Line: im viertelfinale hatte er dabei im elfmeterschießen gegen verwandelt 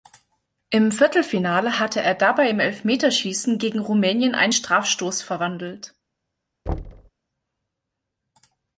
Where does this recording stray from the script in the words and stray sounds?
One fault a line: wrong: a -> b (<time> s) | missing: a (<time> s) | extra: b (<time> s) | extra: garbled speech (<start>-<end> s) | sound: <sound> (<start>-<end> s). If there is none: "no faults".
extra: rumänien einen strafstoß (3.8 s)
sound: thud (6.7-7.1 s)